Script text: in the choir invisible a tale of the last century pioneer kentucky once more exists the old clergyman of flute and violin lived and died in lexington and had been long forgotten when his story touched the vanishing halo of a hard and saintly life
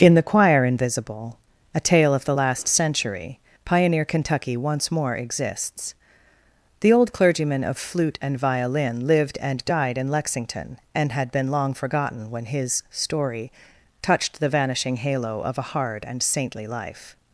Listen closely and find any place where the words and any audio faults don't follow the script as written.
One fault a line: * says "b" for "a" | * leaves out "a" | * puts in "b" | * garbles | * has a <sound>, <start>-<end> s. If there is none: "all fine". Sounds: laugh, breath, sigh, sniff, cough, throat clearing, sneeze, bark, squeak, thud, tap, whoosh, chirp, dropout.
all fine